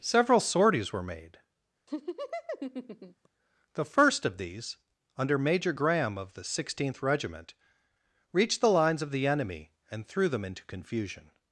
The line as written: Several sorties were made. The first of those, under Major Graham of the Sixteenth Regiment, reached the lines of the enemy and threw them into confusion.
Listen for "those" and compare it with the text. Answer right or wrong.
wrong